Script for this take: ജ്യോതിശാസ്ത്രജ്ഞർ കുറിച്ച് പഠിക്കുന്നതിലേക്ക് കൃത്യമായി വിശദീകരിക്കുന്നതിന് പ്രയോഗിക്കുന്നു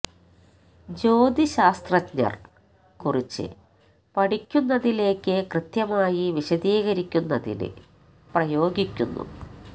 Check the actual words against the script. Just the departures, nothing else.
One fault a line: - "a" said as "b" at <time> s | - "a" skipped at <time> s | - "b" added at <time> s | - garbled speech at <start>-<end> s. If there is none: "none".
none